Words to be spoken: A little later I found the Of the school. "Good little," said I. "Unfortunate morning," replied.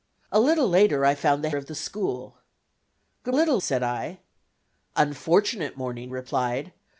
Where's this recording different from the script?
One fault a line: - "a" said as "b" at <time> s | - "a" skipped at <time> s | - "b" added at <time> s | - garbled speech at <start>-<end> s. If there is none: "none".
none